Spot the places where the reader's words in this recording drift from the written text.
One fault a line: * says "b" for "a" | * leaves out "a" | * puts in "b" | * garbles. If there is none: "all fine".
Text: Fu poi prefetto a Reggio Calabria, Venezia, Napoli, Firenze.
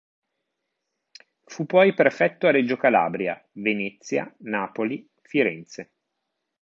all fine